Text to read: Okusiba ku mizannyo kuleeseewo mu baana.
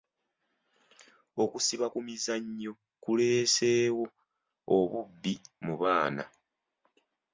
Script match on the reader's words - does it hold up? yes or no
no